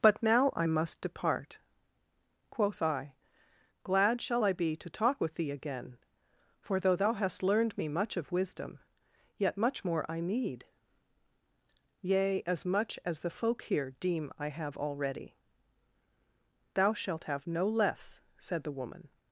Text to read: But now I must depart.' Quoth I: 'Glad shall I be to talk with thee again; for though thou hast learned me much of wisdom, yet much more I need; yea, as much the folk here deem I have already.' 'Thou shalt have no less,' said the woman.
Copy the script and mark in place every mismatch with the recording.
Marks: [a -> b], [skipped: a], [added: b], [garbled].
But now I must depart.' Quoth I: 'Glad shall I be to talk with thee again; for though thou hast learned me much of wisdom, yet much more I need; yea, as much [added: as] the folk here deem I have already.' 'Thou shalt have no less,' said the woman.